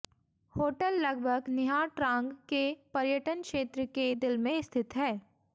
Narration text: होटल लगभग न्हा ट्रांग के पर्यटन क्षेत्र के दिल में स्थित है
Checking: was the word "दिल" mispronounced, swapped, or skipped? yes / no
no